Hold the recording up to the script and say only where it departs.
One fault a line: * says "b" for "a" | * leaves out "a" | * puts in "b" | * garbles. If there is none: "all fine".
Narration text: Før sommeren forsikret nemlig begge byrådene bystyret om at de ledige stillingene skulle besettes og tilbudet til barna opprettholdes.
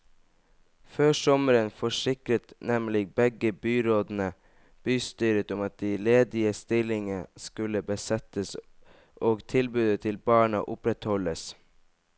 all fine